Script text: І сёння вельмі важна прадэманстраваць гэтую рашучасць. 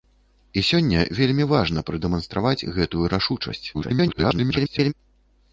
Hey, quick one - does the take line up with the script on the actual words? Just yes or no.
no